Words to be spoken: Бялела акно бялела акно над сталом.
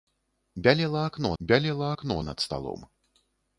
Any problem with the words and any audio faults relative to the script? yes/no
no